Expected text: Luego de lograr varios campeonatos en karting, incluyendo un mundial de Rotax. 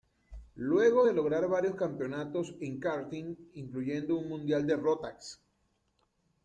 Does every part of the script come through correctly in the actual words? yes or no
yes